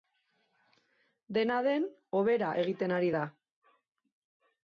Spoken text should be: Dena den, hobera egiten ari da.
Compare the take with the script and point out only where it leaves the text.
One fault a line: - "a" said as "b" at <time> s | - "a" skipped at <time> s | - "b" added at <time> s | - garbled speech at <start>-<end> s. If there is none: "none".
none